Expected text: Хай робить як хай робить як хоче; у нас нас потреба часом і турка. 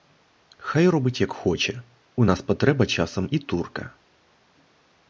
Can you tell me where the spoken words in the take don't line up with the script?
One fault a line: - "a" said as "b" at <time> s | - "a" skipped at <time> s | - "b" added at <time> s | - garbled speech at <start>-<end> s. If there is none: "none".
- "хай робить як" skipped at 1.3 s
- "нас" skipped at 2.4 s